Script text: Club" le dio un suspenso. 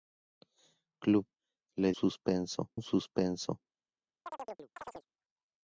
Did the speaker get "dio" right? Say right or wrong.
wrong